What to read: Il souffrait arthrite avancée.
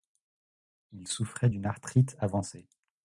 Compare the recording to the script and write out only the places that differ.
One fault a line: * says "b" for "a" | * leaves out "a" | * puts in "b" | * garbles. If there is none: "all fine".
* puts in "d'une"